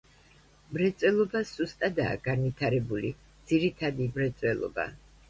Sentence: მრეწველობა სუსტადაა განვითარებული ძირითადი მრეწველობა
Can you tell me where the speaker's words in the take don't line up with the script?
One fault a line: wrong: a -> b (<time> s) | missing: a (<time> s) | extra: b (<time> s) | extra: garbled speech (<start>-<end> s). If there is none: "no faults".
no faults